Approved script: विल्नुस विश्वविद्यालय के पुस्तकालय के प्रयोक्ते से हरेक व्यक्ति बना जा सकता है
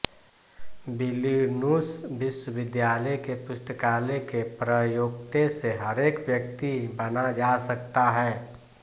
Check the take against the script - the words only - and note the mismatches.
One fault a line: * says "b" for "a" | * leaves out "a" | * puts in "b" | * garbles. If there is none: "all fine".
all fine